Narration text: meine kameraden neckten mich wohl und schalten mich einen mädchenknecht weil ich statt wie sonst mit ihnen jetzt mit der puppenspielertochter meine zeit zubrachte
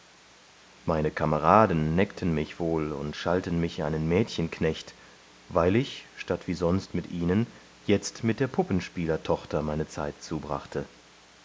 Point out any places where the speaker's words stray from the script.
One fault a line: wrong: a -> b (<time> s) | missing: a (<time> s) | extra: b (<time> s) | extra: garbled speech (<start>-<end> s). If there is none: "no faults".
no faults